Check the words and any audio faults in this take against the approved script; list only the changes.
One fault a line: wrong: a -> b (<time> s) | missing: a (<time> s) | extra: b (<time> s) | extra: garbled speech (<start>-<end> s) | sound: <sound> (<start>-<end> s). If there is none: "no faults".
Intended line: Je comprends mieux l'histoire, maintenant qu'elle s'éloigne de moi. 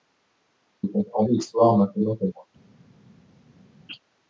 missing: mieux (1.3 s)
missing: s'éloigne de (2.3 s)